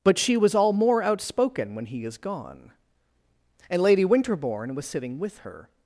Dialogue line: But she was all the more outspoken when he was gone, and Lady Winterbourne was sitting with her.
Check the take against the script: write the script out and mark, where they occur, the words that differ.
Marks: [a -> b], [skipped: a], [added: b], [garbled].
But she was all [skipped: the] more outspoken when he [was -> is] gone, and Lady Winterbourne was sitting with her.